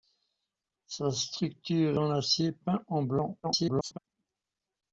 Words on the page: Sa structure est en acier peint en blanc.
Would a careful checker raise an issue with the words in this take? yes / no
yes